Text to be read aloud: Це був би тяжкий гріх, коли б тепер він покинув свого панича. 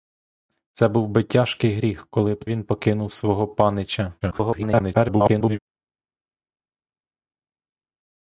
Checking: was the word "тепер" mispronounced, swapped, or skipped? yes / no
yes